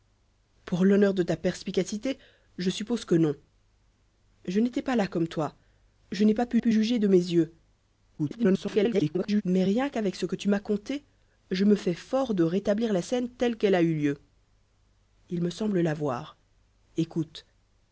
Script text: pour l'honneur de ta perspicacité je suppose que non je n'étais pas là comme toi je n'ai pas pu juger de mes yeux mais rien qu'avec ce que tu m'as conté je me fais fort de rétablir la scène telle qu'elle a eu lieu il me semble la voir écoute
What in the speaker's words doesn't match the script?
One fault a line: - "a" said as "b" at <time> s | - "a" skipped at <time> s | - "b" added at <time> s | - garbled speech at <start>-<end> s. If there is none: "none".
- "pu" added at 6.6 s
- garbled speech at 8.2-9.4 s